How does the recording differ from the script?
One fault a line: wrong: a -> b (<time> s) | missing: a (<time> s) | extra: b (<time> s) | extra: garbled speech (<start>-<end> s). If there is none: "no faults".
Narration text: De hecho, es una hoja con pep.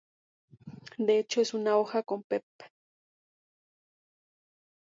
no faults